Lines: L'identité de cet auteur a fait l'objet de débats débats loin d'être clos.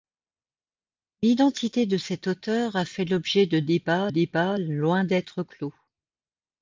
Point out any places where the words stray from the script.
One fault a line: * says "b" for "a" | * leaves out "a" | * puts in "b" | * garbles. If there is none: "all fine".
all fine